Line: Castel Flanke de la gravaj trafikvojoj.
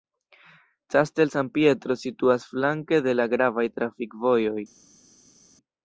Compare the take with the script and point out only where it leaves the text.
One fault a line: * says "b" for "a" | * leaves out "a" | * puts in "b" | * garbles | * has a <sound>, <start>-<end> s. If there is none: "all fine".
* puts in "San Pietro situas"